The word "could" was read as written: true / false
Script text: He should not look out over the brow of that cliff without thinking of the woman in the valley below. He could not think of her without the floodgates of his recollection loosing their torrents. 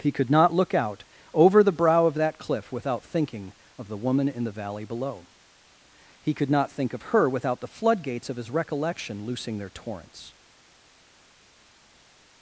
true